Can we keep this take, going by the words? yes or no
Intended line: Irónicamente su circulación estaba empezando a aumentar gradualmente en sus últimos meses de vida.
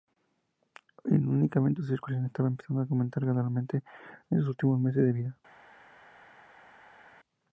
yes